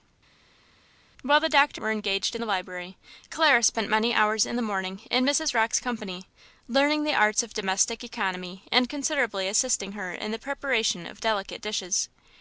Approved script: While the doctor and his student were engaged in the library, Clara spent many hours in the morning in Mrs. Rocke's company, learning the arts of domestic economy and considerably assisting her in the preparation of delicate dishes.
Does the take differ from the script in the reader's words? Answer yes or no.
yes